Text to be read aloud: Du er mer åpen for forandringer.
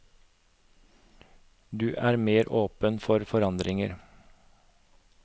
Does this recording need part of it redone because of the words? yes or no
no